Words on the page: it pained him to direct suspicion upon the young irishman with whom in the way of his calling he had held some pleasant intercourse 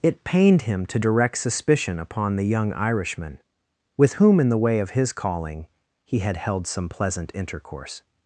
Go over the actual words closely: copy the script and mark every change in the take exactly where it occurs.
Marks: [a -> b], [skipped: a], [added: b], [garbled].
it pained him to direct suspicion upon the young irishman with whom in the way of his calling he had held some pleasant intercourse